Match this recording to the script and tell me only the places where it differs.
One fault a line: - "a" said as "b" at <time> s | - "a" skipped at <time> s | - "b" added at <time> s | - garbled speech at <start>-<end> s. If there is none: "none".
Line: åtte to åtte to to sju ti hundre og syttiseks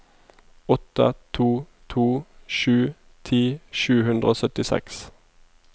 - "åtte" skipped at 1.6 s
- "to" skipped at 2.0 s
- "sju" added at 3.8 s